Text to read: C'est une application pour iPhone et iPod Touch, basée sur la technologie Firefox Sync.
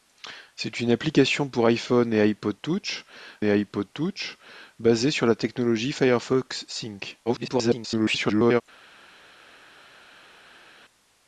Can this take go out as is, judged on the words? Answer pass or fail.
fail